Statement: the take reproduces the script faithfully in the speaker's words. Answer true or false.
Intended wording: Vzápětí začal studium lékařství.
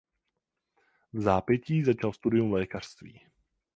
true